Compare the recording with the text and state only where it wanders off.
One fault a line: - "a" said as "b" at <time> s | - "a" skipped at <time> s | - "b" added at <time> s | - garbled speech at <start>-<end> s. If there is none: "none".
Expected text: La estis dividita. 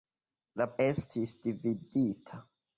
none